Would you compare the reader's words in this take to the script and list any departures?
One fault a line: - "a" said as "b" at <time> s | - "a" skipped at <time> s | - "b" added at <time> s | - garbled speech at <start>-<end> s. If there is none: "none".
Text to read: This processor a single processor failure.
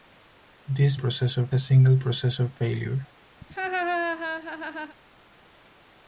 none